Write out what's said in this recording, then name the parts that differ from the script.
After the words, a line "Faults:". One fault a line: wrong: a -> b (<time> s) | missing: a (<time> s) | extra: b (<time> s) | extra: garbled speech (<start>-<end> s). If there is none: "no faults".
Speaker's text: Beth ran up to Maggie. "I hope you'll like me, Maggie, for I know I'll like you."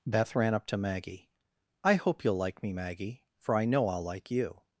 Beth ran up to Maggie. "I hope you'll like me, Maggie, for I know I'll like you."
Faults:
no faults